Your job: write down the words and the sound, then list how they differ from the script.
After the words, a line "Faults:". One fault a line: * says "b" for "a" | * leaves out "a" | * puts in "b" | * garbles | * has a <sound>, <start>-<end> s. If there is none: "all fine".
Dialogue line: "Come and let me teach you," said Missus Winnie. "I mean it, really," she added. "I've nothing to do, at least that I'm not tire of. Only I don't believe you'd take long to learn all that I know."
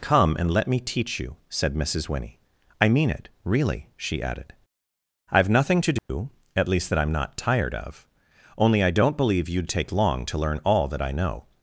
"Come and let me teach you," said Missus Winnie. "I mean it, really," she added. "I've nothing to do, at least that I'm not tired of. Only I don't believe you'd take long to learn all that I know."
Faults:
* has a dropout, 6.0-6.1 s
* says "tired" for "tire"